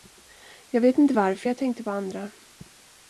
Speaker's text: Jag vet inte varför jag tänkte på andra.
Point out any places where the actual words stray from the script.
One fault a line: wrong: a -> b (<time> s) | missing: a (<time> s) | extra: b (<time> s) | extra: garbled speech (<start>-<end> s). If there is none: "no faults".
no faults